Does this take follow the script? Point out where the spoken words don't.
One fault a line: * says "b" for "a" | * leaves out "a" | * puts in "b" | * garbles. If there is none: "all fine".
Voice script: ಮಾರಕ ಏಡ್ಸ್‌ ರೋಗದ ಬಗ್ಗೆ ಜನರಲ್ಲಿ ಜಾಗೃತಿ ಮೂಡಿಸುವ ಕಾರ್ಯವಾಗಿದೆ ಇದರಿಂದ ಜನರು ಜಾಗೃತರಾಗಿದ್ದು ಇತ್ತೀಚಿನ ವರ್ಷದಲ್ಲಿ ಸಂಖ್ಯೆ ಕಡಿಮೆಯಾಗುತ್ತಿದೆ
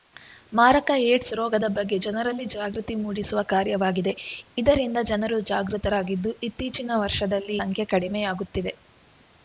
all fine